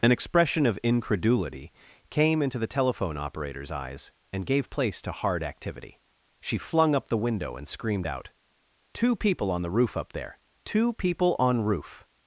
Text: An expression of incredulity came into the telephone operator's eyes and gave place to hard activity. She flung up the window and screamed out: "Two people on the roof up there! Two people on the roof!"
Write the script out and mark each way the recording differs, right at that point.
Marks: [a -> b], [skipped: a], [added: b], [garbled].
An expression of incredulity came into the telephone operator's eyes and gave place to hard activity. She flung up the window and screamed out: "Two people on the roof up there! Two people on [skipped: the] roof!"